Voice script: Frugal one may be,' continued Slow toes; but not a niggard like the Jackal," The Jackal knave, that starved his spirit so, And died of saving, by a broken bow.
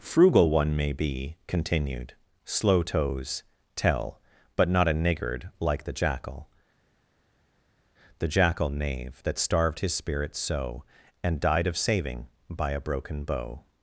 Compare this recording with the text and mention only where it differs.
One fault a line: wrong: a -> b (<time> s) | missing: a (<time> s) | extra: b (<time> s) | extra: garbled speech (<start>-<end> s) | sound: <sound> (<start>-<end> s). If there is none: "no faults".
extra: tell (3.8 s)